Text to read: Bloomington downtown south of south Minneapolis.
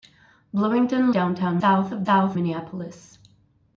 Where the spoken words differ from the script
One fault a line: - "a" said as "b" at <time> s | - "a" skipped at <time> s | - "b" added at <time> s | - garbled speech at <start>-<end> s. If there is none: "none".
none